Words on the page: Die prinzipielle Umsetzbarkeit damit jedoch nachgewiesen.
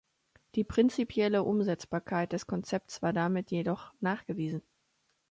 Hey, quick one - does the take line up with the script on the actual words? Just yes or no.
no